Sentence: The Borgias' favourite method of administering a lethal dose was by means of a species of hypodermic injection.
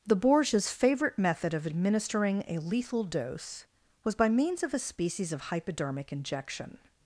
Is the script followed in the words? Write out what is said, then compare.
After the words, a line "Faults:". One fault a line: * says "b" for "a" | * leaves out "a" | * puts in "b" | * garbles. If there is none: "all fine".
The Borgias' favourite method of administering a lethal dose was by means of a species of hypodermic injection.
Faults:
all fine